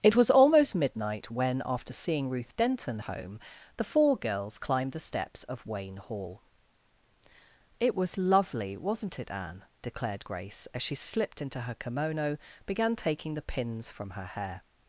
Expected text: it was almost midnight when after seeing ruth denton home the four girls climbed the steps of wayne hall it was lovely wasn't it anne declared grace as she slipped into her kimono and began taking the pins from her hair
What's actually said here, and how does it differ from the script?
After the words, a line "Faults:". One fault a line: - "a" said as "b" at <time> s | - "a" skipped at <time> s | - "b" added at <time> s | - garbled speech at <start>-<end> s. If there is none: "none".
it was almost midnight when after seeing ruth denton home the four girls climbed the steps of wayne hall it was lovely wasn't it anne declared grace as she slipped into her kimono began taking the pins from her hair
Faults:
- "and" skipped at 12.4 s